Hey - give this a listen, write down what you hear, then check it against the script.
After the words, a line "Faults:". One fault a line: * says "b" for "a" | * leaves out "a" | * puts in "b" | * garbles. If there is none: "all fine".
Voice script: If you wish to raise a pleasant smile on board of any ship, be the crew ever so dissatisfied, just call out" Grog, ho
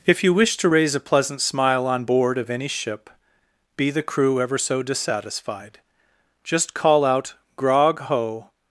If you wish to raise a pleasant smile on board of any ship, be the crew ever so dissatisfied, just call out" Grog, ho
Faults:
all fine